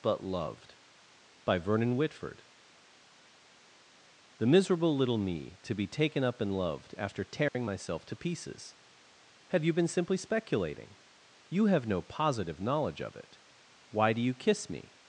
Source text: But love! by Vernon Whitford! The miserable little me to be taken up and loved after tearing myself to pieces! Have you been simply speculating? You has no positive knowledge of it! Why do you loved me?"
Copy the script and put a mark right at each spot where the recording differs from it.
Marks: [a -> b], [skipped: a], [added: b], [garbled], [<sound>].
But [love! -> loved] by Vernon Whitford! The miserable little me to be taken up and loved after tearing [dropout] myself to pieces! Have you been simply speculating? You [has -> have] no positive knowledge of it! Why do you [loved -> kiss] me?"